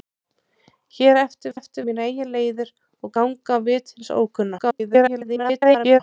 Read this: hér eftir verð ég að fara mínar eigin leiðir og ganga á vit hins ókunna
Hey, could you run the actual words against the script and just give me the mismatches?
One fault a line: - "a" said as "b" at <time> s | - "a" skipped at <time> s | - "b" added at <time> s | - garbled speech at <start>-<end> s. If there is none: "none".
- "verð" skipped at 1.5 s
- "fara" said as "eftir" at 1.6 s
- garbled speech at 4.6-6.0 s